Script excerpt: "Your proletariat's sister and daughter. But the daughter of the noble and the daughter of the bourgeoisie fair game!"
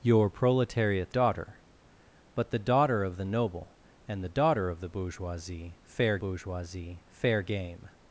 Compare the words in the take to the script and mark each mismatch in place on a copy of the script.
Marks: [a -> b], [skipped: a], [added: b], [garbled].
"Your proletariat's [skipped: sister and] daughter. But the daughter of the noble and the daughter of the bourgeoisie fair [added: bourgeoisie fair] game!"